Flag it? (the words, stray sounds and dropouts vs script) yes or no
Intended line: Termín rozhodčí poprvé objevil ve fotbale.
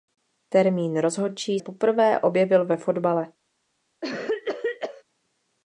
yes